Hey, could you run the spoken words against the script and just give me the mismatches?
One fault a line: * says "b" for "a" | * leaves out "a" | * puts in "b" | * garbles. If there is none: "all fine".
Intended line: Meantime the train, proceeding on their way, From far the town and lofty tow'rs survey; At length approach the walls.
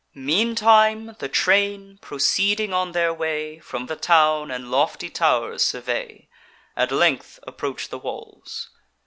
* leaves out "far"